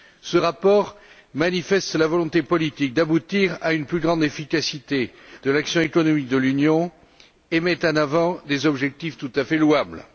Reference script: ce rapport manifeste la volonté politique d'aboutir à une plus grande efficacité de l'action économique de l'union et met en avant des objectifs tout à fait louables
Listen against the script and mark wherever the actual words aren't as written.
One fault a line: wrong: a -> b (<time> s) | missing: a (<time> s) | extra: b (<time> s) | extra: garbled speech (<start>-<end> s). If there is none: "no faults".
no faults